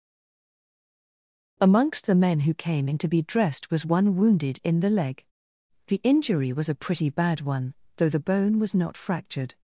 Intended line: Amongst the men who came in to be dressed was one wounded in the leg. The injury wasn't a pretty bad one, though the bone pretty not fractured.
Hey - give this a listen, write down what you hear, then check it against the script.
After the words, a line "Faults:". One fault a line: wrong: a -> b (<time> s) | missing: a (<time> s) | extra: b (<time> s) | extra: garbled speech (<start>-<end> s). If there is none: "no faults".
Amongst the men who came in to be dressed was one wounded in the leg. The injury was a pretty bad one, though the bone was not fractured.
Faults:
wrong: wasn't -> was (6.5 s)
wrong: pretty -> was (8.6 s)